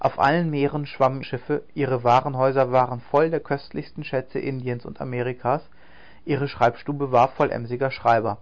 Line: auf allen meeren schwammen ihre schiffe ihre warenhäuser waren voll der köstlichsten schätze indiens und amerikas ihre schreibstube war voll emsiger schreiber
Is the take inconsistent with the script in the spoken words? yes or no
yes